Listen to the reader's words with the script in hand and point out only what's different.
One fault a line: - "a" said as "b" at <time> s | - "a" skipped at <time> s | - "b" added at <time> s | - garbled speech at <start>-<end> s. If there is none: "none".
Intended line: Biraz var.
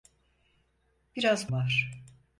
none